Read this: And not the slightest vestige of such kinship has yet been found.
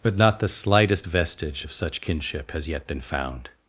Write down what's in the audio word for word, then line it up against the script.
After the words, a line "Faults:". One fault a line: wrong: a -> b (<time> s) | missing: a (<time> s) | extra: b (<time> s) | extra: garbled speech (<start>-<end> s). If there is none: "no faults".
But not the slightest vestige of such kinship has yet been found.
Faults:
wrong: And -> But (0.0 s)